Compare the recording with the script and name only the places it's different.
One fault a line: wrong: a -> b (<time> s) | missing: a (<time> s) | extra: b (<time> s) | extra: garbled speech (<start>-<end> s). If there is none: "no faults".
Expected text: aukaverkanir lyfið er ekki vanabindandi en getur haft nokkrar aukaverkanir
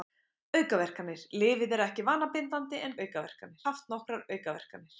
wrong: getur -> aukaverkanir (3.1 s)